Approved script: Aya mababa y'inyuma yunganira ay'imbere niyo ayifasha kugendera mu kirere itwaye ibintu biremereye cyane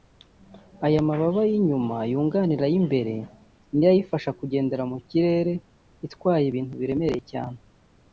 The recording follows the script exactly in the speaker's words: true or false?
true